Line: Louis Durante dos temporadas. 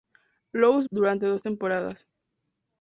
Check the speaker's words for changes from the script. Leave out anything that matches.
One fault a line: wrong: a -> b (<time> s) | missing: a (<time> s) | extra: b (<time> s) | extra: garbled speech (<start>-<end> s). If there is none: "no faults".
no faults